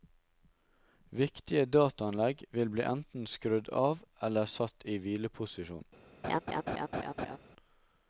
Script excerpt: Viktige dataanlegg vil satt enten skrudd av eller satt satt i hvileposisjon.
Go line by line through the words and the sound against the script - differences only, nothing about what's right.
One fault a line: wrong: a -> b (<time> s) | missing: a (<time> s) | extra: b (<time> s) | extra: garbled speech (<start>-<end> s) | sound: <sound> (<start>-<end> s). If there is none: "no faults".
wrong: satt -> bli (2.8 s)
missing: satt (4.9 s)
sound: laugh (6.2-7.4 s)